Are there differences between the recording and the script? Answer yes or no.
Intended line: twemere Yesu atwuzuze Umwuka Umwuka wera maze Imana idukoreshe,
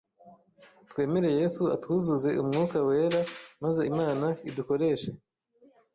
yes